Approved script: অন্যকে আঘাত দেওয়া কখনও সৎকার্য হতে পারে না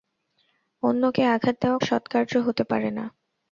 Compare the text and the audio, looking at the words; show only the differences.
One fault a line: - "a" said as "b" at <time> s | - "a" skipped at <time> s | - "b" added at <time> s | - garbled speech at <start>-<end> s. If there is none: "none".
- "কখনও" skipped at 1.8 s